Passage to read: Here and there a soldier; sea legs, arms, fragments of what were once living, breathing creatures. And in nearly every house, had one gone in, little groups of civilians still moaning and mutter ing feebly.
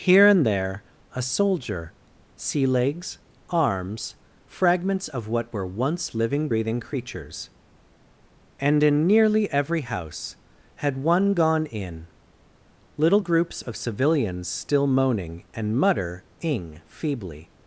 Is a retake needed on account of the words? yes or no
no